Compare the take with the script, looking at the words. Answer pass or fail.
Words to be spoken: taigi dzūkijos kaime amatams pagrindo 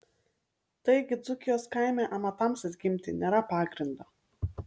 fail